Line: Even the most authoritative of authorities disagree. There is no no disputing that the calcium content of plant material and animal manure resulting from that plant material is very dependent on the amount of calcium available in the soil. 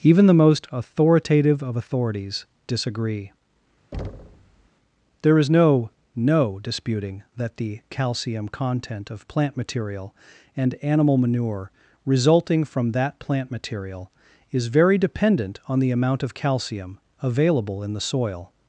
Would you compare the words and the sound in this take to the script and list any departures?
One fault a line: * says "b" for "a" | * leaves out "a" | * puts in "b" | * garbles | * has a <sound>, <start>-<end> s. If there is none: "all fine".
* has a thud, 3.9-4.7 s